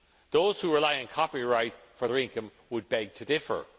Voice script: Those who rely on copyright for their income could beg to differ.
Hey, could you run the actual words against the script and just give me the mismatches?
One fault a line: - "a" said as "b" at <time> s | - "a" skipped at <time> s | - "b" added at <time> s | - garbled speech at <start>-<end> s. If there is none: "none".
- "could" said as "would" at 2.7 s